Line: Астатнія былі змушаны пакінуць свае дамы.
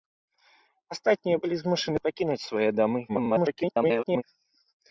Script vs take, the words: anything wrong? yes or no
yes